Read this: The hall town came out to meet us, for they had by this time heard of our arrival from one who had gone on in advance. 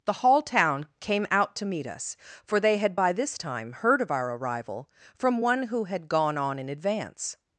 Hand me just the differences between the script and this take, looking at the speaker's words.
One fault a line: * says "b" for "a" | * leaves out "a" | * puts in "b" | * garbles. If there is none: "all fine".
all fine